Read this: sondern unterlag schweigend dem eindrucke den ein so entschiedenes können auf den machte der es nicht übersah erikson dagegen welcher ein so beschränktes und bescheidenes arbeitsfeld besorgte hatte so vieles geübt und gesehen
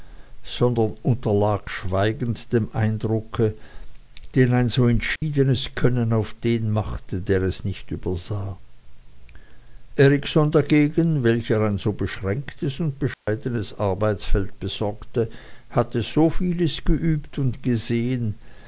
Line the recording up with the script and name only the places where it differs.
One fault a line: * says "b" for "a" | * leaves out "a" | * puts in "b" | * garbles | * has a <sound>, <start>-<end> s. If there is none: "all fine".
* has a dropout, 5.2-5.2 s
* has a dropout, 13.1-13.3 s